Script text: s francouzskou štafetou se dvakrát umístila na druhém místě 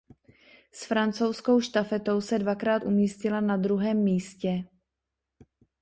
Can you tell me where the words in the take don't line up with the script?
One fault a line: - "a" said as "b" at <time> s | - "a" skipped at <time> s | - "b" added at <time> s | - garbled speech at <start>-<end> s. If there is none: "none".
none